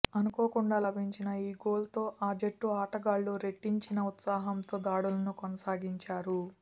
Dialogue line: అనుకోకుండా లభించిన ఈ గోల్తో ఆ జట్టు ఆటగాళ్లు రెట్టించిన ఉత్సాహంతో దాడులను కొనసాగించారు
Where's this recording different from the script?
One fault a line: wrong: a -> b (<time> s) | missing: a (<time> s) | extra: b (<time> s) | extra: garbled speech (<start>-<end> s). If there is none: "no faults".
no faults